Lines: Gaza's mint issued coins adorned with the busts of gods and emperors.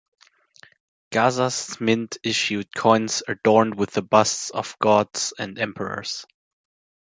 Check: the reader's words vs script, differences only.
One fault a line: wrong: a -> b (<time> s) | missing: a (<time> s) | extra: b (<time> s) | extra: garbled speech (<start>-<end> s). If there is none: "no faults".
no faults